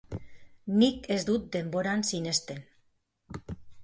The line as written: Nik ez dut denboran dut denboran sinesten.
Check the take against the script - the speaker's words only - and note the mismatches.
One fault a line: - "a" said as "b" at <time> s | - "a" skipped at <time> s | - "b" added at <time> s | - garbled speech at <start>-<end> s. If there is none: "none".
- "dut denboran" skipped at 2.0 s